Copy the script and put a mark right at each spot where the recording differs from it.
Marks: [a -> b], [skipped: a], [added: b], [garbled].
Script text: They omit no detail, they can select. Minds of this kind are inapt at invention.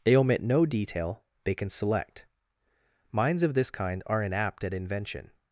They omit no detail, they can select. Minds of this kind are inapt at invention.